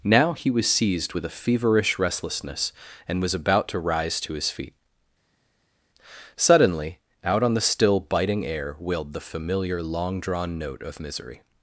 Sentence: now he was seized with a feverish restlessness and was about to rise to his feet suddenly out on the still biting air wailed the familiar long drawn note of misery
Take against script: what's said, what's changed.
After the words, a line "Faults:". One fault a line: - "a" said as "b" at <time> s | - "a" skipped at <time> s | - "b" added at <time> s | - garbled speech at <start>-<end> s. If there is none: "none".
now he was seized with a feverish restlessness and was about to rise to his feet suddenly out on the still biting air wailed the familiar long drawn note of misery
Faults:
none